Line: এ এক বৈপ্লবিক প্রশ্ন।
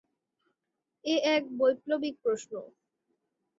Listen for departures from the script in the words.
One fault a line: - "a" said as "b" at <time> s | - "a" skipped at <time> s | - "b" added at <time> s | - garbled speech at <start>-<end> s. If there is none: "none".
none